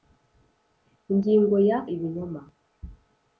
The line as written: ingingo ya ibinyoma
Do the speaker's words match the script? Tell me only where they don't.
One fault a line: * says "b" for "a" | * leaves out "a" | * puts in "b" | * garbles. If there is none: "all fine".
all fine